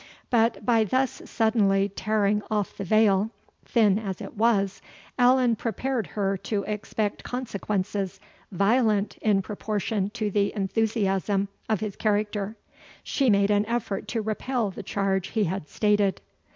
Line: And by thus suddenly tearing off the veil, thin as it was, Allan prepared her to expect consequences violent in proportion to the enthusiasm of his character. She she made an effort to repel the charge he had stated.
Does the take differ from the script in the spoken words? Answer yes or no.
yes